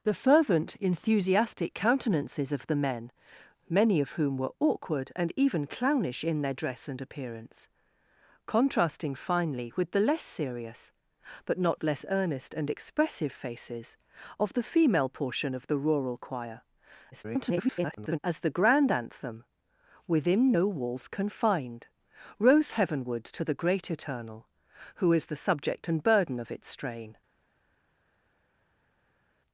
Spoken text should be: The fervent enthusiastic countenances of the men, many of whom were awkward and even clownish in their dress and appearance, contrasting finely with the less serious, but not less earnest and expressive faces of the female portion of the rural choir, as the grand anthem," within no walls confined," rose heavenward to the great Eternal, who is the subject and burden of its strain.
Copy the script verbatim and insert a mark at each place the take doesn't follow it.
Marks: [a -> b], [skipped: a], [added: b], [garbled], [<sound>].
The fervent enthusiastic countenances of the men, many of whom were awkward and even clownish in their dress and appearance, contrasting finely with the less serious, but not less earnest and expressive faces of the female portion of the rural choir, [garbled] as the grand anthem," within no walls confined," rose heavenward to the great Eternal, who is the subject and burden of its strain.